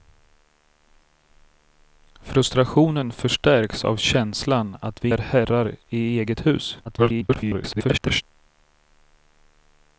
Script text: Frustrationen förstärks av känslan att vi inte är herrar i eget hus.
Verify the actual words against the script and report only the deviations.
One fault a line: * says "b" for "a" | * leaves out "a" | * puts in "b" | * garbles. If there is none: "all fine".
* leaves out "inte"
* garbles